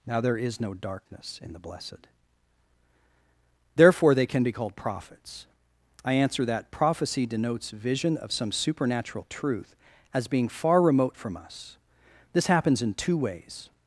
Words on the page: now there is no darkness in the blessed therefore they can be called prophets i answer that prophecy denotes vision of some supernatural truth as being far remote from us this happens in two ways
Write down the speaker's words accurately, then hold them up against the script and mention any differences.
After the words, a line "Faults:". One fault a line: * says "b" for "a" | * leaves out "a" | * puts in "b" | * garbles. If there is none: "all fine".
now there is no darkness in the blessed therefore they can be called prophets i answer that prophecy denotes vision of some supernatural truth as being far remote from us this happens in two ways
Faults:
all fine